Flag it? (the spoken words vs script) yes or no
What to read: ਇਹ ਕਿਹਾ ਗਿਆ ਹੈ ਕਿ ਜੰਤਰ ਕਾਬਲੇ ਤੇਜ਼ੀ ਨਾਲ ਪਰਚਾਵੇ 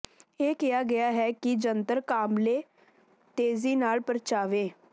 no